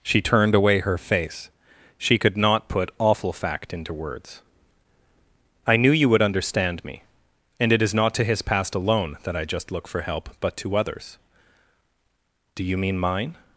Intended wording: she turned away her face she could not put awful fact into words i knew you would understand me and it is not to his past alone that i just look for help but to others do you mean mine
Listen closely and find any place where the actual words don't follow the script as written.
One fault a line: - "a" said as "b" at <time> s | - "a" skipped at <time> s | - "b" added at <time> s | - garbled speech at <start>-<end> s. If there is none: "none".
none